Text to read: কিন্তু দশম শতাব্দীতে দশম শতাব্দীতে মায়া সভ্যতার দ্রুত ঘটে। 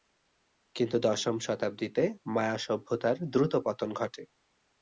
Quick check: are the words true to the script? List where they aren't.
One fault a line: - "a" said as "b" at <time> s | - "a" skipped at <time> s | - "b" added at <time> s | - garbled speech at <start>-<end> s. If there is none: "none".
- "দশম শতাব্দীতে" skipped at 2.0 s
- "পতন" added at 3.6 s